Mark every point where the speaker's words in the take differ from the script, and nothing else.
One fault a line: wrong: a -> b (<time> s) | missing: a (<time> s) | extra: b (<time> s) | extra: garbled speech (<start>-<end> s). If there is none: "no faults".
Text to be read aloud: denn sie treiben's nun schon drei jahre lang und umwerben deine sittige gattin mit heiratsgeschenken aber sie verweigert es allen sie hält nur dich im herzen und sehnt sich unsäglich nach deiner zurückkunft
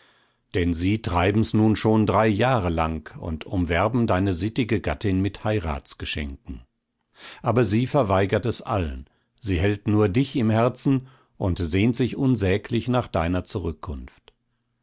no faults